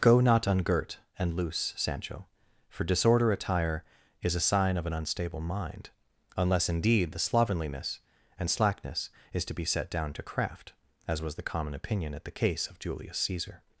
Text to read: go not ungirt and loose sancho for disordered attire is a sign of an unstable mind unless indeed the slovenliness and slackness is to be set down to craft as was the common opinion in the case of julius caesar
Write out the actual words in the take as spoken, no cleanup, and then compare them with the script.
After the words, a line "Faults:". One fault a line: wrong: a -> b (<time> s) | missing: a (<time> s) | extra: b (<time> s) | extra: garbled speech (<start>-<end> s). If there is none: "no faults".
go not ungirt and loose sancho for disorder attire is a sign of an unstable mind unless indeed the slovenliness and slackness is to be set down to craft as was the common opinion at the case of julius caesar
Faults:
wrong: disordered -> disorder (2.8 s)
wrong: in -> at (12.2 s)